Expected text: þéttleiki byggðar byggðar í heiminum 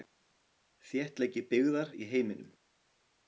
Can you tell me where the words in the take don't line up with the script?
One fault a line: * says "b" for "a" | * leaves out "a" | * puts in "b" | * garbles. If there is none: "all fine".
* leaves out "byggðar"